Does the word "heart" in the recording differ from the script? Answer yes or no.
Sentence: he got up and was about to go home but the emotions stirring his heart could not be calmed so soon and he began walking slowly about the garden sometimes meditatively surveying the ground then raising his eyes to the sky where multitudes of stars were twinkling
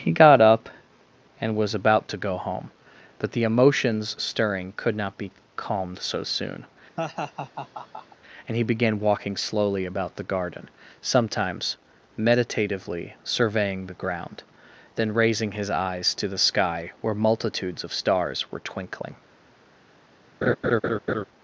yes